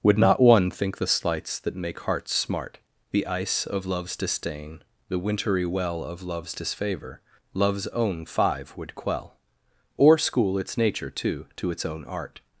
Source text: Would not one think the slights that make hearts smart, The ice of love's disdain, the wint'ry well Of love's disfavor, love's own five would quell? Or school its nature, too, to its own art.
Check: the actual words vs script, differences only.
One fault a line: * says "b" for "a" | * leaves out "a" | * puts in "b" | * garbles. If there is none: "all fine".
all fine